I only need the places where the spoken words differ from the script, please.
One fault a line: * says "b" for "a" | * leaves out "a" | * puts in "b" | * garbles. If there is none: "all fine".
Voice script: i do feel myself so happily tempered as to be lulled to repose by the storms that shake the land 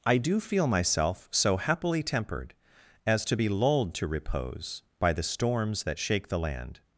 all fine